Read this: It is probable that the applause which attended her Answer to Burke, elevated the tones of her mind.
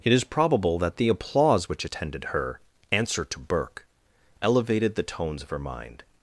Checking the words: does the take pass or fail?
pass